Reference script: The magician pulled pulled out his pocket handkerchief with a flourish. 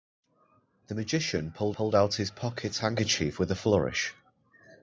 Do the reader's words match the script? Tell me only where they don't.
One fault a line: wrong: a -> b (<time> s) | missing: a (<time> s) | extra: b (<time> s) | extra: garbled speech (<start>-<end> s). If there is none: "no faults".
no faults